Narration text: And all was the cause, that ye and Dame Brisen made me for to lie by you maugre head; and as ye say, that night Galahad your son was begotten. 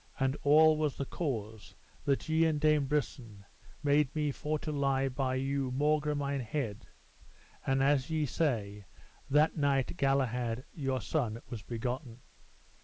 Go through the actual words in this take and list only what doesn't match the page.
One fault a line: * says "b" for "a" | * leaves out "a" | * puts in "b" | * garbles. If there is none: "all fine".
* puts in "mine"